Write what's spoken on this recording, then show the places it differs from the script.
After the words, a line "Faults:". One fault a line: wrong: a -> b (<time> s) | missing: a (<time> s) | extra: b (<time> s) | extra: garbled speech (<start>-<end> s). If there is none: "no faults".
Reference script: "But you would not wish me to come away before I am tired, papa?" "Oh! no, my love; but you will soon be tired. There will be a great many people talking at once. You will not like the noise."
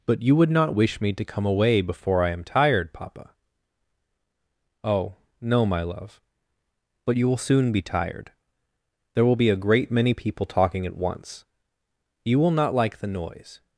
"But you would not wish me to come away before I am tired, papa?" "Oh! no, my love; but you will soon be tired. There will be a great many people talking at once. You will not like the noise."
Faults:
no faults